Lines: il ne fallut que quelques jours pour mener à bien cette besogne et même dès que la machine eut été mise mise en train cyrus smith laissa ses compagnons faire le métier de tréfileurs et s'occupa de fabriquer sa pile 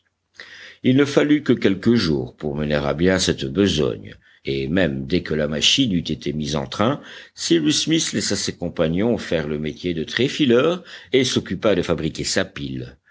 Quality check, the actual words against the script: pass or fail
fail